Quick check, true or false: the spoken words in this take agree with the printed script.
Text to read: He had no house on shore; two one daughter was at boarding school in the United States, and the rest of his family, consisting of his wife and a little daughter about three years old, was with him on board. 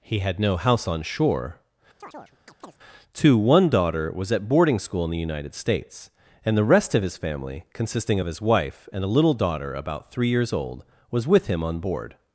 true